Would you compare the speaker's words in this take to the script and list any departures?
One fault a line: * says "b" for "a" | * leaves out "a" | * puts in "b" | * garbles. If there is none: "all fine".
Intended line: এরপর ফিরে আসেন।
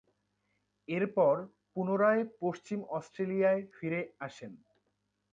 * puts in "পুনরায় পশ্চিম অস্ট্রেলিয়ায়"